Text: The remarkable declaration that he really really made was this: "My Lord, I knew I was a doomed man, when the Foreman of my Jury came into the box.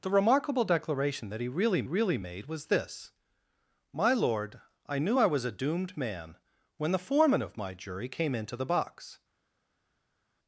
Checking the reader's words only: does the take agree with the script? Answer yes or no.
yes